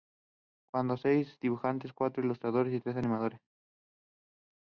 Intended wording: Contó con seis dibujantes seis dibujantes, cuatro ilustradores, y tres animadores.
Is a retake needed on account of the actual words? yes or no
yes